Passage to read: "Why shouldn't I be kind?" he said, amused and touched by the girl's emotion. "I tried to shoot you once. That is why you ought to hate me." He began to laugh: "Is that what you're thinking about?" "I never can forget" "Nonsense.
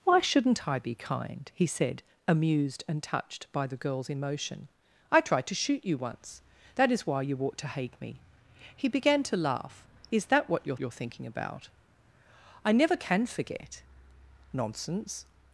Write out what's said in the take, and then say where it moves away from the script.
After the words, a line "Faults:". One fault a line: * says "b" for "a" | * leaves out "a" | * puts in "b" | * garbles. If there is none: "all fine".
"Why shouldn't I be kind?" he said, amused and touched by the girl's emotion. "I tried to shoot you once. That is why you ought to hate me." He began to laugh: "Is that what you're you're thinking about?" "I never can forget" "Nonsense.
Faults:
* puts in "you're"